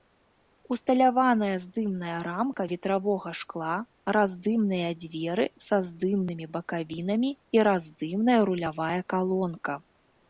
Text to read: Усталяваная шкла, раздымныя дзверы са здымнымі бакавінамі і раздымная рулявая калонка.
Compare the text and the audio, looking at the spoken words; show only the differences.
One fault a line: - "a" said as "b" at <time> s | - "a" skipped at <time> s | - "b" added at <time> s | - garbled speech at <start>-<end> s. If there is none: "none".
- "здымная рамка ветравога" added at 1.6 s